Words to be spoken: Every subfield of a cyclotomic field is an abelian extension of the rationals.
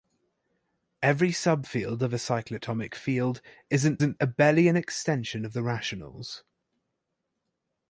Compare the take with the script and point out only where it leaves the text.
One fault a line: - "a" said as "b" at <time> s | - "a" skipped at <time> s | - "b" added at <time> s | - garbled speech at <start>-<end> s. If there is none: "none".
- "an" added at 4.0 s